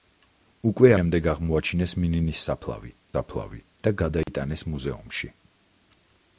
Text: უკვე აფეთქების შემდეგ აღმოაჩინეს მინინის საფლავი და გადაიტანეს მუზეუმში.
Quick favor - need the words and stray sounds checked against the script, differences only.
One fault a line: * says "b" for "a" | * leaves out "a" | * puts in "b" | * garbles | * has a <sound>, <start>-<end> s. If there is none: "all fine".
* leaves out "აფეთქების"
* puts in "საფლავი"
* has a dropout, 4.2-4.3 s